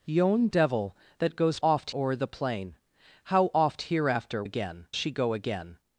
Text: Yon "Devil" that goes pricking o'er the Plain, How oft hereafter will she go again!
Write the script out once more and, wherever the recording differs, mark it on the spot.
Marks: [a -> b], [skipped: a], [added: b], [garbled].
Yon "Devil" that goes [pricking -> oft] o'er the Plain, How oft hereafter [will -> again] she go again!